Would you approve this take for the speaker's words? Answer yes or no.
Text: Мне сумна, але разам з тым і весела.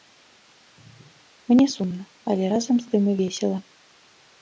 yes